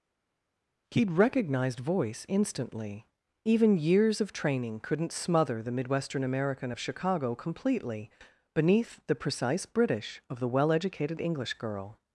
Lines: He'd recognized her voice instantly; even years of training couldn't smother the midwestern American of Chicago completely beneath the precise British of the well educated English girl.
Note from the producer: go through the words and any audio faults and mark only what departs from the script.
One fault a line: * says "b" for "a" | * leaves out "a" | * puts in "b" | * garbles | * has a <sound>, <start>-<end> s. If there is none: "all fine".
* leaves out "her"